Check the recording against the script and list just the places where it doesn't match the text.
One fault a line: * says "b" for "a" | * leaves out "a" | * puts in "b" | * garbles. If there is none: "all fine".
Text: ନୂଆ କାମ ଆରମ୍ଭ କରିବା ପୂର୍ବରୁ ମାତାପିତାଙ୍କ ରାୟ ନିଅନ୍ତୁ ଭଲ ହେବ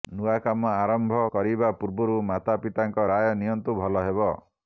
all fine